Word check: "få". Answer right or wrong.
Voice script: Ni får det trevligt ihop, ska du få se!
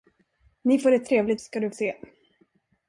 wrong